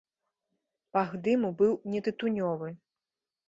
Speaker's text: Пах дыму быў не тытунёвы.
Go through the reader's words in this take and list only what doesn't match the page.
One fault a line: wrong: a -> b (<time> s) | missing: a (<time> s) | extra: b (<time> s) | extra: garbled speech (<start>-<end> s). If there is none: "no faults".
no faults